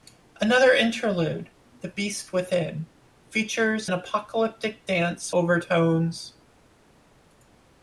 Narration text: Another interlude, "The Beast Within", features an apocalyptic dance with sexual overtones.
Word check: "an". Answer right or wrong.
wrong